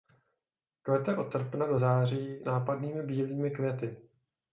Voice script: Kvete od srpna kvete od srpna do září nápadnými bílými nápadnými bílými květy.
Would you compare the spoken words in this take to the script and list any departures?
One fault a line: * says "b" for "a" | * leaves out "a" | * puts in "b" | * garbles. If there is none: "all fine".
* leaves out "kvete od srpna"
* leaves out "nápadnými bílými"